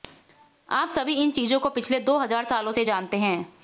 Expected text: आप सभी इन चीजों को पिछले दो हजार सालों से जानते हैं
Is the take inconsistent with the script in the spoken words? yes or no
no